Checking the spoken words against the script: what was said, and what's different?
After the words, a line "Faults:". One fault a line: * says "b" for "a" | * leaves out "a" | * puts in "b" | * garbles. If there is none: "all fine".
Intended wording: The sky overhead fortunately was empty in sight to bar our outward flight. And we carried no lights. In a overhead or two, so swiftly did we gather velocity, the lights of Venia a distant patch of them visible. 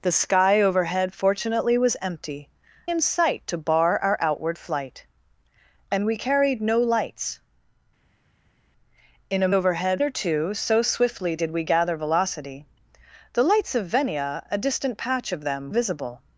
The sky overhead fortunately was empty in sight to bar our outward flight. And we carried no lights. In a overhead or two, so swiftly did we gather velocity, the lights of Venia a distant patch of them visible.
Faults:
all fine